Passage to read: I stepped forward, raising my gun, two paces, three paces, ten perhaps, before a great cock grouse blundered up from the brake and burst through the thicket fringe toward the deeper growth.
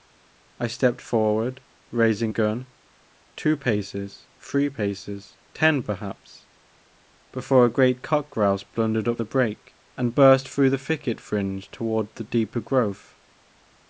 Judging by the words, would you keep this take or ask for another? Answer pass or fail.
fail